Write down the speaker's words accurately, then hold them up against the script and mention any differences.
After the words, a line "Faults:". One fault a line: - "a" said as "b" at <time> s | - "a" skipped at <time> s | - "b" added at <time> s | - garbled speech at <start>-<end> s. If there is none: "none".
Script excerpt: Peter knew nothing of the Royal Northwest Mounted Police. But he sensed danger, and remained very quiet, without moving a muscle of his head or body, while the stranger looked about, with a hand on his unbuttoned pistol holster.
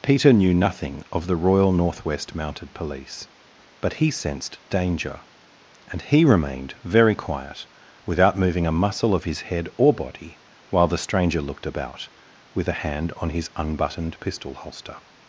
Peter knew nothing of the Royal Northwest Mounted Police. But he sensed danger, and he remained very quiet, without moving a muscle of his head or body, while the stranger looked about, with a hand on his unbuttoned pistol holster.
Faults:
- "he" added at 6.0 s